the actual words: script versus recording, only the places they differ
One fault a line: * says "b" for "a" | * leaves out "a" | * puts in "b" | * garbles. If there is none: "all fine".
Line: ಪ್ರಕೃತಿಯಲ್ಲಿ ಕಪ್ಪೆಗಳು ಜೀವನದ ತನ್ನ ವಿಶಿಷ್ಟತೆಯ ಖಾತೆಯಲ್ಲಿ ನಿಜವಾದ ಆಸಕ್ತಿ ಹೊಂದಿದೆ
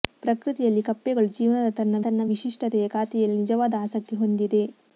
* puts in "ತನ್ನ"